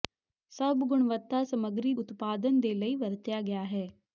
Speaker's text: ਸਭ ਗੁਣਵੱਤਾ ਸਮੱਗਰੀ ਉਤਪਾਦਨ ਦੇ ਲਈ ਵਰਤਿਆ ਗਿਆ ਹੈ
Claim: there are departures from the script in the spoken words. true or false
false